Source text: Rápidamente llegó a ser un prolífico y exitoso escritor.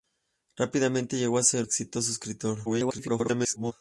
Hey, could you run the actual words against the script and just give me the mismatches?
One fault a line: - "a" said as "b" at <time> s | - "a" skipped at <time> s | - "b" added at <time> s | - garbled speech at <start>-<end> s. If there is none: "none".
- "un prolífico y" skipped at 1.7 s
- garbled speech at 2.7-3.7 s